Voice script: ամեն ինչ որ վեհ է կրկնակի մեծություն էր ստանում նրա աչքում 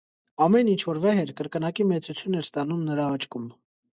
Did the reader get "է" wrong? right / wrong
wrong